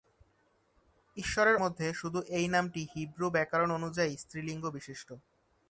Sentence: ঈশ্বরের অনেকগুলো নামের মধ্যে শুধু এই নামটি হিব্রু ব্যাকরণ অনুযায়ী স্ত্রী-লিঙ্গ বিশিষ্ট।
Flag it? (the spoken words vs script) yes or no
yes